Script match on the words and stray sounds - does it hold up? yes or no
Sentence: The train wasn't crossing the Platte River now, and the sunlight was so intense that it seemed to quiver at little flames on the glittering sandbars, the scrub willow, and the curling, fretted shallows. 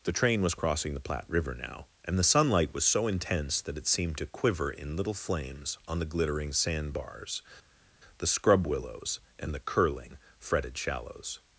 no